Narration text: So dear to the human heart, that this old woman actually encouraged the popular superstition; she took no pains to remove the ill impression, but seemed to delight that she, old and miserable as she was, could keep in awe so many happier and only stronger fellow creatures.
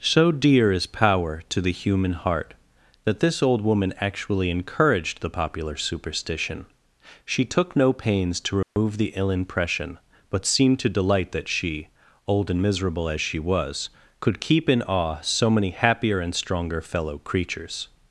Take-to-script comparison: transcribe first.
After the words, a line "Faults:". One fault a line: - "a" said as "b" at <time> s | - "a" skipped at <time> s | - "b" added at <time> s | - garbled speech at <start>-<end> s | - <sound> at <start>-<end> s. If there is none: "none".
So dear is power to the human heart, that this old woman actually encouraged the popular superstition; she took no pains to remove the ill impression, but seemed to delight that she, old and miserable as she was, could keep in awe so many happier and stronger fellow creatures.
Faults:
- "is power" added at 0.7 s
- dropout at 8.6-8.8 s
- "only" skipped at 16.3 s